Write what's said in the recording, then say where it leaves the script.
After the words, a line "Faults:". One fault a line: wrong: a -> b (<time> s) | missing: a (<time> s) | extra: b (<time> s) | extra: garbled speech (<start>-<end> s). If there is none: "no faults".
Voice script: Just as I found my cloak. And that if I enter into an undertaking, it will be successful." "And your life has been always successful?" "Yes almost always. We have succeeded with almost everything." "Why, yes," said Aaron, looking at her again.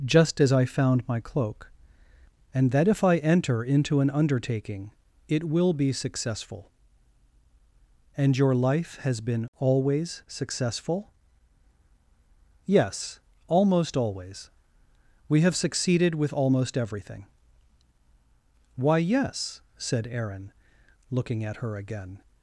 Just as I found my cloak. And that if I enter into an undertaking, it will be successful." "And your life has been always successful?" "Yes almost always. We have succeeded with almost everything." "Why, yes," said Aaron, looking at her again.
Faults:
no faults